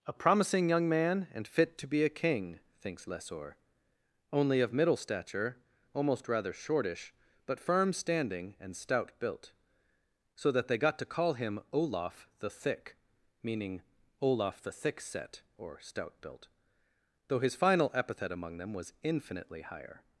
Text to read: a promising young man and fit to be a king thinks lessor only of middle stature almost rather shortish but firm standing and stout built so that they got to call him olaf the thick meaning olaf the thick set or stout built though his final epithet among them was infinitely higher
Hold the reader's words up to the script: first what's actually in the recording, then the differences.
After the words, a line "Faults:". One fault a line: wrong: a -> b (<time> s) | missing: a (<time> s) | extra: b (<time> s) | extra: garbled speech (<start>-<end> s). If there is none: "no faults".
a promising young man and fit to be a king thinks lessor only of middle stature almost rather shortish but firm standing and stout built so that they got to call him olaf the thick meaning olaf the thick set or stout built though his final epithet among them was infinitely higher
Faults:
no faults